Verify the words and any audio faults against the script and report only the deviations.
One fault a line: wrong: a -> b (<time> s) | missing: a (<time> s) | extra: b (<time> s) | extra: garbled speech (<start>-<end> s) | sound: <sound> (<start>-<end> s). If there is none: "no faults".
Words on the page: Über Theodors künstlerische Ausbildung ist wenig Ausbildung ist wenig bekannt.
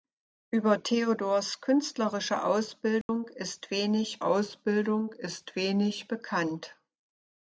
sound: dropout (3.0-3.1 s)